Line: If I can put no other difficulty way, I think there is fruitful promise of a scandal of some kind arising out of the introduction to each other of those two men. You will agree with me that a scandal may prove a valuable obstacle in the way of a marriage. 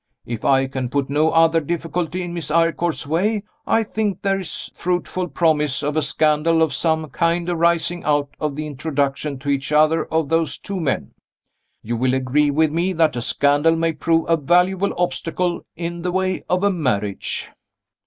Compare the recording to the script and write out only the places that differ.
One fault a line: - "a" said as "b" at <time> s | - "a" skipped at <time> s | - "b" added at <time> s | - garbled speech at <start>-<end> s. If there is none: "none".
- "in Miss Eyrecourt's" added at 2.2 s